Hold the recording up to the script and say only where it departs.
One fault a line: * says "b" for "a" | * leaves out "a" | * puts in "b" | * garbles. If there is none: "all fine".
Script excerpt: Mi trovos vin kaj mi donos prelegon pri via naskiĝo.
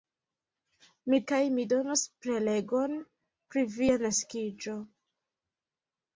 * leaves out "trovos vin"